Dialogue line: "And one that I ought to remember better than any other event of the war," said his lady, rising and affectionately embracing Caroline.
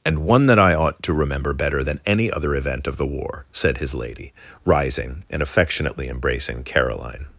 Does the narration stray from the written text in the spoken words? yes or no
no